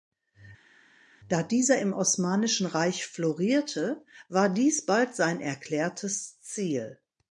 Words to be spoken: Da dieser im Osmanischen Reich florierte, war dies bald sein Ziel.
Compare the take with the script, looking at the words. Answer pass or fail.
fail